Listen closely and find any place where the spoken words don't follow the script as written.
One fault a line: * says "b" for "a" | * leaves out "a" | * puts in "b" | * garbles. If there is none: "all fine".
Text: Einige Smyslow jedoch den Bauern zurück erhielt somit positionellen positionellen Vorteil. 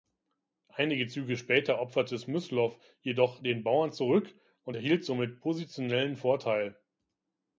* puts in "Züge später opferte"
* puts in "und"
* leaves out "positionellen"